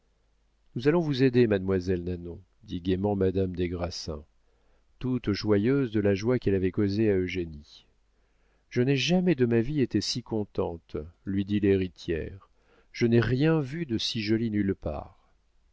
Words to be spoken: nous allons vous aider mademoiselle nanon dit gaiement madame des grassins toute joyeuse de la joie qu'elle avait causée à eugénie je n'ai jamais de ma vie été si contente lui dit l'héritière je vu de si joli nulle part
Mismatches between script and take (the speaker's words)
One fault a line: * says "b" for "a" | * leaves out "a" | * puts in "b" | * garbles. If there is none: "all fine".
* puts in "n'ai rien"